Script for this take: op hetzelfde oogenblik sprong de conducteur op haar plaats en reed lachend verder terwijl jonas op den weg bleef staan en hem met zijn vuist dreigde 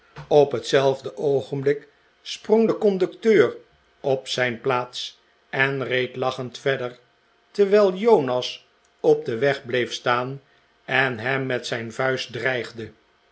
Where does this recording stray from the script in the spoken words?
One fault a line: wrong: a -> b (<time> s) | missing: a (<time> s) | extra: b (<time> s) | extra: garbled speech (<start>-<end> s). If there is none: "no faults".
wrong: haar -> zijn (4.3 s)